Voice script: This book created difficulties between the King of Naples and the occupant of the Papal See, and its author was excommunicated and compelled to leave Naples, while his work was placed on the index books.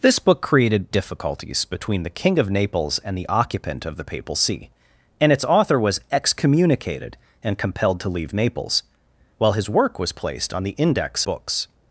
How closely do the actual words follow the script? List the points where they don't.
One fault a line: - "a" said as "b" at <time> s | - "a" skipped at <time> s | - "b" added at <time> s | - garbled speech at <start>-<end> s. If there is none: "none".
none